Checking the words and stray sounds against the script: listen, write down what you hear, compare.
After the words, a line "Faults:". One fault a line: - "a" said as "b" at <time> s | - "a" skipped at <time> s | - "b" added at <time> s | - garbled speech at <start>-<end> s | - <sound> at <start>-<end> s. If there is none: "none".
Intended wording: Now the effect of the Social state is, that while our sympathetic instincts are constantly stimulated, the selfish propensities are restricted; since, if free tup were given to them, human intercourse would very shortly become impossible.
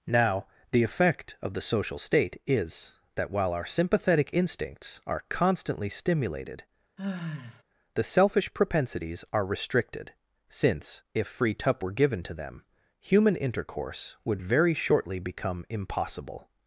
Now the effect of the Social state is, that while our sympathetic instincts are constantly stimulated, the selfish propensities are restricted; since, if free tup were given to them, human intercourse would very shortly become impossible.
Faults:
- sigh at 7.0-7.6 s